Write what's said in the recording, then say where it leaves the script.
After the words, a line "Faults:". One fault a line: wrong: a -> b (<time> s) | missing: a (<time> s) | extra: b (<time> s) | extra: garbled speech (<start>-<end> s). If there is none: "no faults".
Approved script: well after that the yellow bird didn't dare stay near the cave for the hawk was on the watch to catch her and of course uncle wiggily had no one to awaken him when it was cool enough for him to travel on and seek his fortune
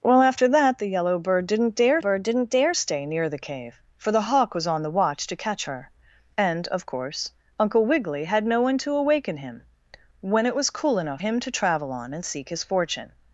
well after that the yellow bird didn't dare bird didn't dare stay near the cave for the hawk was on the watch to catch her and of course uncle wiggily had no one to awaken him when it was cool enough him to travel on and seek his fortune
Faults:
extra: bird didn't dare (2.0 s)
missing: for (11.2 s)